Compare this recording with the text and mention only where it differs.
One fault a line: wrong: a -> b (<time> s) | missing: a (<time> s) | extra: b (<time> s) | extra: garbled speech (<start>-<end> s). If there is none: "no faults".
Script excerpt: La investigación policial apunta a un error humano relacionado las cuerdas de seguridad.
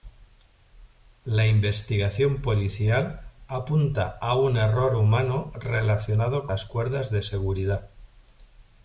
no faults